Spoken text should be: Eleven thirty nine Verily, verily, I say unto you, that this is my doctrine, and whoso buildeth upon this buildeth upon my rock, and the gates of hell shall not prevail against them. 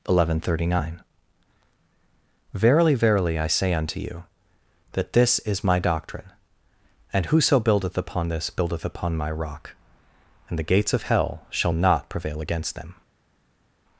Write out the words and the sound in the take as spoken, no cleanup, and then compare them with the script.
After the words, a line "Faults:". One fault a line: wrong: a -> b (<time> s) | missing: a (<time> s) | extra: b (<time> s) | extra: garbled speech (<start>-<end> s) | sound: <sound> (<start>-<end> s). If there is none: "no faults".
Eleven thirty nine Verily, verily, I say unto you, that this is my doctrine, and whoso buildeth upon this buildeth upon my rock, and the gates of hell shall not prevail against them.
Faults:
no faults